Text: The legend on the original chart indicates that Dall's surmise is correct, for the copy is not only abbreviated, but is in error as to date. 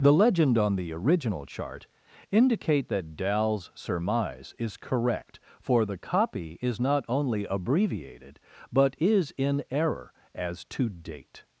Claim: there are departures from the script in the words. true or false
true